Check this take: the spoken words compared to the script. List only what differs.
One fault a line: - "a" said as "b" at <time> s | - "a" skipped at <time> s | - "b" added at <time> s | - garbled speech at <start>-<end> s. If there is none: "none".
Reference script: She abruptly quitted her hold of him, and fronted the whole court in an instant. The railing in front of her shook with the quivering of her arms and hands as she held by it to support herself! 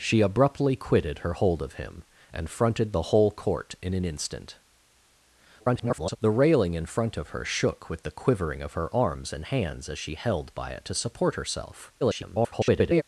- garbled speech at 5.6-6.2 s
- garbled speech at 12.0-13.0 s